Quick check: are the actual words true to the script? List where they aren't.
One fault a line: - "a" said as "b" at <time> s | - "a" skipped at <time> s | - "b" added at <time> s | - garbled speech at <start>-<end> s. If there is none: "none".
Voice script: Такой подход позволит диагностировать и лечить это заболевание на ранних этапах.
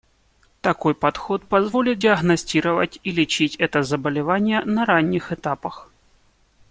none